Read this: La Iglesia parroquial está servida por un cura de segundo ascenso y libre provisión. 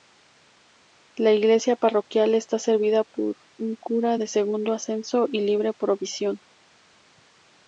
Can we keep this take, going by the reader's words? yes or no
yes